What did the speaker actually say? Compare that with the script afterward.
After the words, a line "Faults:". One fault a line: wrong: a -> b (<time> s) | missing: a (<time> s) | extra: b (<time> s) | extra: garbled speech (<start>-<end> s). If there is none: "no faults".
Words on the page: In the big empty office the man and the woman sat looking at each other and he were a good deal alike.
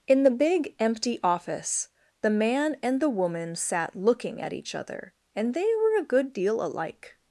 In the big empty office the man and the woman sat looking at each other and they were a good deal alike.
Faults:
wrong: he -> they (5.5 s)